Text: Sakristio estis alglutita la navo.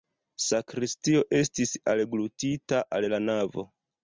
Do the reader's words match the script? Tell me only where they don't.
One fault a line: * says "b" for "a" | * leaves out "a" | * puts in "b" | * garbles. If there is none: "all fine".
* puts in "al"